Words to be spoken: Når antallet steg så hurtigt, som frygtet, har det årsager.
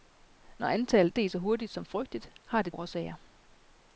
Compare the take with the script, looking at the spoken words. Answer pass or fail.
pass